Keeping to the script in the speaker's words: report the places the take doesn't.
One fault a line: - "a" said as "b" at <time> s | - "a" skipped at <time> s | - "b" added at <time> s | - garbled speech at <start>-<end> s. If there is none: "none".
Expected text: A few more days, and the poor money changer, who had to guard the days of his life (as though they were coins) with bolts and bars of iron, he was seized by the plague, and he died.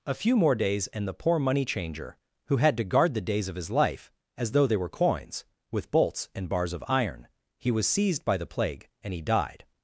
none